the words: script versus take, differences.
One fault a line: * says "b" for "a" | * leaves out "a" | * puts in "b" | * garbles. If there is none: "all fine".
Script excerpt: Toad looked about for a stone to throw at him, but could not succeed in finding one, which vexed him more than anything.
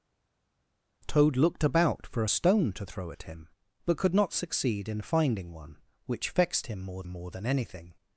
* puts in "more"